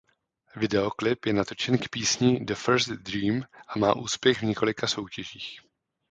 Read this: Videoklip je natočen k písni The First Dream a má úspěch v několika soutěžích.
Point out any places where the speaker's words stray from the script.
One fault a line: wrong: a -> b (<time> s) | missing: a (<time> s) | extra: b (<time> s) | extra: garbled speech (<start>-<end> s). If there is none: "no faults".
no faults